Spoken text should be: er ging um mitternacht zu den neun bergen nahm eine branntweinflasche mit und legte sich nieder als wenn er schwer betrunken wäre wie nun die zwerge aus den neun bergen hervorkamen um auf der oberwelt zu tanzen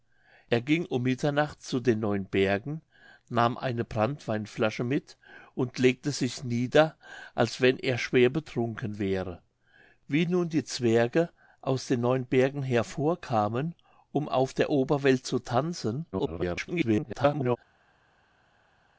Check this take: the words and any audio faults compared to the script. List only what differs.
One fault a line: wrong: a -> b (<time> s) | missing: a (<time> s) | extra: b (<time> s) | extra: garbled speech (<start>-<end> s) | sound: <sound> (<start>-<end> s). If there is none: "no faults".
extra: garbled speech (16.1-17.6 s)